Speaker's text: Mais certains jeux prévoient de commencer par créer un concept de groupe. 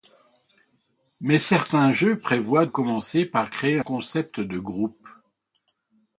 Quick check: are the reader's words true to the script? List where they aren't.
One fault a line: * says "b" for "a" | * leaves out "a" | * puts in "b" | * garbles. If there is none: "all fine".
* leaves out "de"
* leaves out "un"